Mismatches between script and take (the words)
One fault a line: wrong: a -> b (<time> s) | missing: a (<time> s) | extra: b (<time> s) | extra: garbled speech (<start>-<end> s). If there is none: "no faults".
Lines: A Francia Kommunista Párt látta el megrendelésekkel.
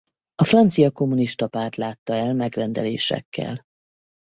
no faults